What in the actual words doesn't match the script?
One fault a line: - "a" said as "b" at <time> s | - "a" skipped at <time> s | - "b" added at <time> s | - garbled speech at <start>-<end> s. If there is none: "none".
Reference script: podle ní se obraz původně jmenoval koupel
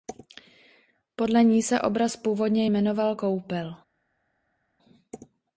none